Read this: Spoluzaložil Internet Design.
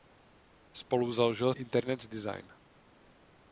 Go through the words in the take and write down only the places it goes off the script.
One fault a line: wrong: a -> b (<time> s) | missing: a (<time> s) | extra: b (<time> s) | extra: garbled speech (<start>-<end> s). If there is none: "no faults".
no faults